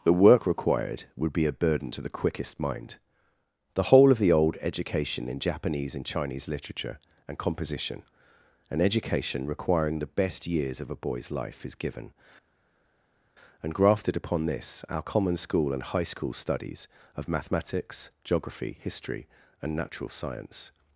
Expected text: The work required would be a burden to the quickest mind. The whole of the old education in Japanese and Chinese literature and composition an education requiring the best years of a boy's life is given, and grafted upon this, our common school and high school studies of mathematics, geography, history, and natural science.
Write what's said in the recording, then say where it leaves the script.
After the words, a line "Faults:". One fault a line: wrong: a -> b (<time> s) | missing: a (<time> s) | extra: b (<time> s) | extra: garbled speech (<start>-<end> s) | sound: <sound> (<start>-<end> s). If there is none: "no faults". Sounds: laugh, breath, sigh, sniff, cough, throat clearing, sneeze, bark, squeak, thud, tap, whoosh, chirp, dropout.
The work required would be a burden to the quickest mind. The whole of the old education in Japanese and Chinese literature and composition an education requiring the best years of a boy's life is given, and grafted upon this, our common school and high school studies of mathematics, geography, history, and natural science.
Faults:
no faults